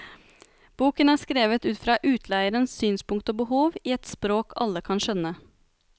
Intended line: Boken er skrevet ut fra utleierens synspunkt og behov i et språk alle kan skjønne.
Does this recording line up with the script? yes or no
yes